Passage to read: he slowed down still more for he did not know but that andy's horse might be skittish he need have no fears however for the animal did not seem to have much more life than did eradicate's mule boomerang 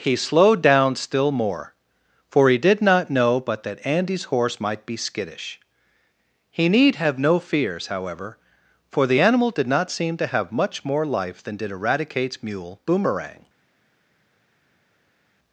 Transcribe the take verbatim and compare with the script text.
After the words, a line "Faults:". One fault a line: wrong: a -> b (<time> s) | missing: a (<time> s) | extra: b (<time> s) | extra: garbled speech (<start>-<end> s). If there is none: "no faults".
he slowed down still more for he did not know but that andy's horse might be skittish he need have no fears however for the animal did not seem to have much more life than did eradicate's mule boomerang
Faults:
no faults